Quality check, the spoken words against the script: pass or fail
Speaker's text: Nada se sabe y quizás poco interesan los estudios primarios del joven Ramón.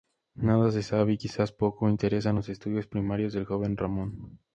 pass